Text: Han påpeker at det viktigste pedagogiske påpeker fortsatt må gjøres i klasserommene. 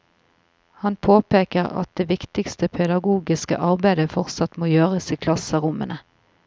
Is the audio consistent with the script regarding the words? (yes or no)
no